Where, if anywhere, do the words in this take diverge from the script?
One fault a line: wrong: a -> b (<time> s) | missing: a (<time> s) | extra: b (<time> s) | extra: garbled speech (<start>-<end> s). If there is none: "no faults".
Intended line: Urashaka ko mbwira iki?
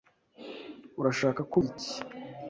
missing: mbwira (1.6 s)